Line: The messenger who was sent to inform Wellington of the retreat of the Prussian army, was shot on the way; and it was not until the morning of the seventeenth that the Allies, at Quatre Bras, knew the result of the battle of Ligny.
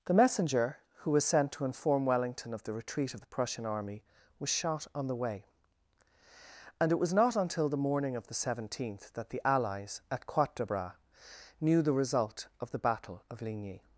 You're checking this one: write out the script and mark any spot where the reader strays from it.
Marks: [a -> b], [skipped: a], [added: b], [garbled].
The messenger who was sent to inform Wellington of the retreat of the Prussian army, was shot on the way; and it was not until the morning of the seventeenth that the Allies, at Quatre Bras, knew the result of the battle of Ligny.